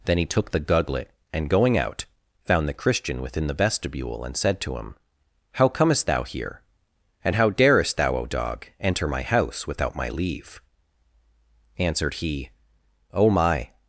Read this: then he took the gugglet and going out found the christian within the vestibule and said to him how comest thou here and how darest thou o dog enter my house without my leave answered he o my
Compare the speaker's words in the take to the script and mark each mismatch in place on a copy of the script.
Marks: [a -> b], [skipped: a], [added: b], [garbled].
then he took the gugglet and going out found the christian within the vestibule and said to him how comest thou here and how darest thou o dog enter my house without my leave answered he o my